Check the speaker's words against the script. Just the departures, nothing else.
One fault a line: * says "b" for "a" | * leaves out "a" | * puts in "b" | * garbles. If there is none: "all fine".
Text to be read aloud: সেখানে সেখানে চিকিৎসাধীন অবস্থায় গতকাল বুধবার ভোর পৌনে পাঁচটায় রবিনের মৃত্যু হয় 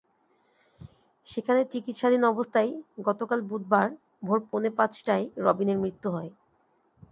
* leaves out "সেখানে"